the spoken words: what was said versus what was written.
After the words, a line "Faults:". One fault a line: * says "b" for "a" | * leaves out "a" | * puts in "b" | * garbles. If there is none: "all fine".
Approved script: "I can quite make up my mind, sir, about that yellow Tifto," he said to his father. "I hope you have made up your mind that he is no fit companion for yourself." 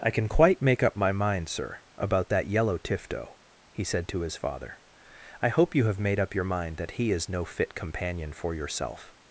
"I can quite make up my mind, sir, about that yellow Tifto," he said to his father. "I hope you have made up your mind that he is no fit companion for yourself."
Faults:
all fine